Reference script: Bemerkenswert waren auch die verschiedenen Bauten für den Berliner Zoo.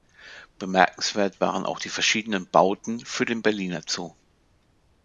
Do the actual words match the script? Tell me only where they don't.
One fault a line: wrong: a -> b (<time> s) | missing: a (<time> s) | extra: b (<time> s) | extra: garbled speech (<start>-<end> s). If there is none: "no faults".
no faults